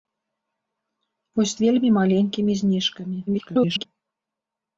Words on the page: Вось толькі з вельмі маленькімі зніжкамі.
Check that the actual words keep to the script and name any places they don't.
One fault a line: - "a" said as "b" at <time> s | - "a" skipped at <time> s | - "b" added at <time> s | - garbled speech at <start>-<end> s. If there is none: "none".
- "толькі" skipped at 1.5 s
- garbled speech at 3.3-3.9 s